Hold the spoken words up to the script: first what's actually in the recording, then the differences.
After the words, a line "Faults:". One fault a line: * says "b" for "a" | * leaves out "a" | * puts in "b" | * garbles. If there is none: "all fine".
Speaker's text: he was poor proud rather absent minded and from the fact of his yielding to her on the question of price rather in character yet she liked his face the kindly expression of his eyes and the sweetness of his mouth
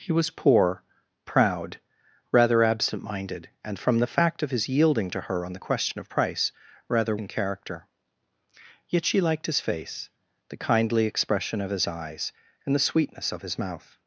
he was poor proud rather absent minded and from the fact of his yielding to her on the question of price rather in character yet she liked his face the kindly expression of his eyes and the sweetness of his mouth
Faults:
all fine